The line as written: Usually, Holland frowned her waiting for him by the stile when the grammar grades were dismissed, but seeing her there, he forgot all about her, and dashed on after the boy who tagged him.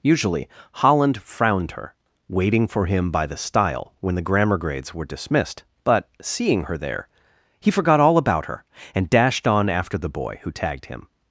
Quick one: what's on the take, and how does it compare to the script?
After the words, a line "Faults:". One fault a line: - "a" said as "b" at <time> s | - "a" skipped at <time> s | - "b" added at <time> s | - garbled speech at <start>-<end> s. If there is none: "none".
Usually, Holland frowned her waiting for him by the stile when the grammar grades were dismissed, but seeing her there, he forgot all about her, and dashed on after the boy who tagged him.
Faults:
none